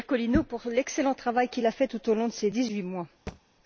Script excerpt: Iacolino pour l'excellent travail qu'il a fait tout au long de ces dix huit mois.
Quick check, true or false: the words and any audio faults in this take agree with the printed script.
false